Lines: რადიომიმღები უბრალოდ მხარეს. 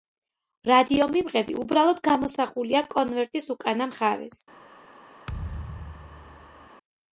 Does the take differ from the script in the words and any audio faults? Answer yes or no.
yes